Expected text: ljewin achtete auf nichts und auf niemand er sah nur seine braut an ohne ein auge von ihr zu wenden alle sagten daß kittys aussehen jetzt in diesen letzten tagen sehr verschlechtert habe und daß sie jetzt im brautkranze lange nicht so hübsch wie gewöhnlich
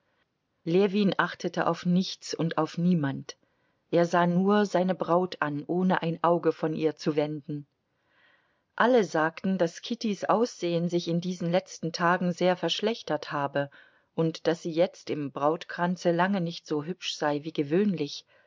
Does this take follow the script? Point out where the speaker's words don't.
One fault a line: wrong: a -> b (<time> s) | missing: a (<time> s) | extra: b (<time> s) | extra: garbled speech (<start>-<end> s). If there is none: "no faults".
wrong: jetzt -> sich (10.9 s)
extra: sei (17.1 s)